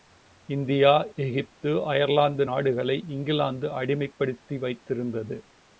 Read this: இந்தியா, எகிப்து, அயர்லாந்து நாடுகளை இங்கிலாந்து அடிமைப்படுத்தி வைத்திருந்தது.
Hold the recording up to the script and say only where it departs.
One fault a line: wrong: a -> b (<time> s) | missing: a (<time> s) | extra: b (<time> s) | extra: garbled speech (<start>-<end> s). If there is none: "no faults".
no faults